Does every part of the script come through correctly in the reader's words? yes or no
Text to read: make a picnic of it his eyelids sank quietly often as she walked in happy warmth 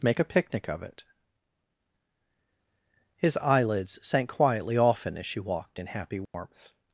yes